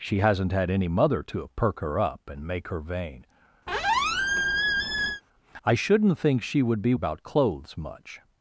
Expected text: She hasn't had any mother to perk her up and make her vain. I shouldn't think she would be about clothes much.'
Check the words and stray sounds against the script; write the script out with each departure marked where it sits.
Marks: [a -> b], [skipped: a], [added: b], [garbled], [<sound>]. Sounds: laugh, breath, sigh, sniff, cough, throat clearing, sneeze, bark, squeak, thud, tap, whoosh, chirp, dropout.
She hasn't had any mother to perk her up and make her vain. [squeak] I shouldn't think she would be about clothes much.'